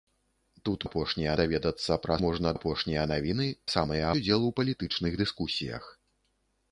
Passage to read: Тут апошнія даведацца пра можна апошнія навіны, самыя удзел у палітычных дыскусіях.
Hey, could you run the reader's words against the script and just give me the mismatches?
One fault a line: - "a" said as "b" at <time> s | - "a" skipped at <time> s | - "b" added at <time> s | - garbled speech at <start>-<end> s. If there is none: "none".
none